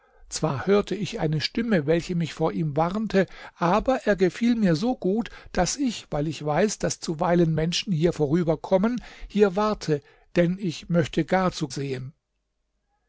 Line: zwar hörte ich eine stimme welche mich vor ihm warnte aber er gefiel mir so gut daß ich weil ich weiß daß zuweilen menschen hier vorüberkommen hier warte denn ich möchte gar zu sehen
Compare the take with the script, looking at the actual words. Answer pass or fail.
pass